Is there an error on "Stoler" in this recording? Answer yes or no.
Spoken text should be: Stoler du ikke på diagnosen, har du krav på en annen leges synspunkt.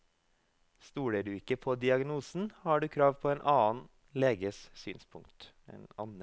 no